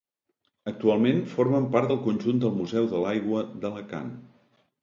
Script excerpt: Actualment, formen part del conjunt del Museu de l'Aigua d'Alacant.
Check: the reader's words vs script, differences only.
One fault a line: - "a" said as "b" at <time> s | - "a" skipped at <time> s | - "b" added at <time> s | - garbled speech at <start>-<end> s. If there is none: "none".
none